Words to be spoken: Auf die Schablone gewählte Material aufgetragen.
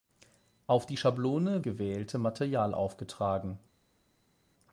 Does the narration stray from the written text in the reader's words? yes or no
no